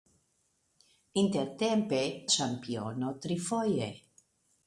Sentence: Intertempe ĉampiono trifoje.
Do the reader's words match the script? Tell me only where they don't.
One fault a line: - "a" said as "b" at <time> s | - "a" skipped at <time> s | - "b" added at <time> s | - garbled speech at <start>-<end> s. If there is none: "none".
none